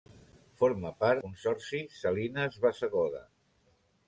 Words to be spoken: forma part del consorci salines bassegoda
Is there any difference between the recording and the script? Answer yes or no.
yes